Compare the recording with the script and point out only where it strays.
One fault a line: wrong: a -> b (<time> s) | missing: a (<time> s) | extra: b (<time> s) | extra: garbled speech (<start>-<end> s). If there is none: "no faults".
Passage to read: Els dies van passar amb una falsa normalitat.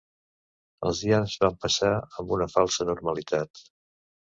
no faults